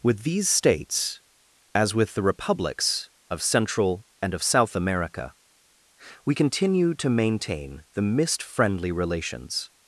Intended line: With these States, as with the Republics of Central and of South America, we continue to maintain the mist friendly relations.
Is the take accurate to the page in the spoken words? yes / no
yes